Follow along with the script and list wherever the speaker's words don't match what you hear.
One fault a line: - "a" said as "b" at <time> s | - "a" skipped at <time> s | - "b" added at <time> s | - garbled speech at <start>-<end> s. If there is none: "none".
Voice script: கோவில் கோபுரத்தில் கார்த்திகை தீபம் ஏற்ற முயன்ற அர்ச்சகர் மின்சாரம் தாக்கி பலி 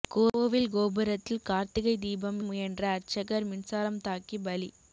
- "ஏற்ற" skipped at 2.4 s